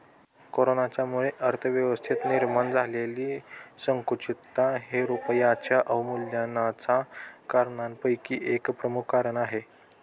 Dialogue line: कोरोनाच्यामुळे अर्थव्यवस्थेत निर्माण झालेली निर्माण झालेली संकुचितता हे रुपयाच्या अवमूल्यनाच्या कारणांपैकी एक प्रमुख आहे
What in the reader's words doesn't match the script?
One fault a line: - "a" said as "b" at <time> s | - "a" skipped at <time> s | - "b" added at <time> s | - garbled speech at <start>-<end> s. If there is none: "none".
- "निर्माण झालेली" skipped at 3.4 s
- "कारण" added at 9.1 s